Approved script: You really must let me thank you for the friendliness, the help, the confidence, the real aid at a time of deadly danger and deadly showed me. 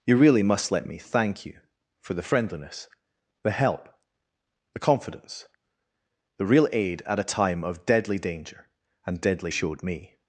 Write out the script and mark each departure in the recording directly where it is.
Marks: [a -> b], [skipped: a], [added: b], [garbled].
You really must let me thank you for the friendliness, the help, the confidence, the real aid at a time of deadly danger and deadly showed me.